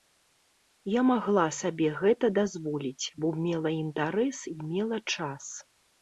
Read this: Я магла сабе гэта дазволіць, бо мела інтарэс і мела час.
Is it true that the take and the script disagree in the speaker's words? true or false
false